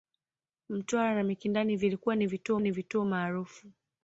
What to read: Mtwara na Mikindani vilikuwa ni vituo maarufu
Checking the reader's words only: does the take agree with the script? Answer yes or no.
no